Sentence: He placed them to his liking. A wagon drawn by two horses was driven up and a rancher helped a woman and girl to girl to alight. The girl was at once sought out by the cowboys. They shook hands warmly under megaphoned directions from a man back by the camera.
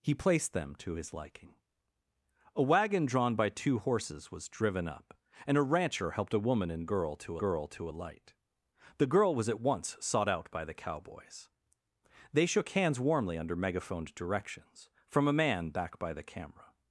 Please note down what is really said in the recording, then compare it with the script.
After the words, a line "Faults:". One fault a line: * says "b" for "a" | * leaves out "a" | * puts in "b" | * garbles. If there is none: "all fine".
He placed them to his liking. A wagon drawn by two horses was driven up and a rancher helped a woman and girl to girl to alight. The girl was at once sought out by the cowboys. They shook hands warmly under megaphoned directions from a man back by the camera.
Faults:
all fine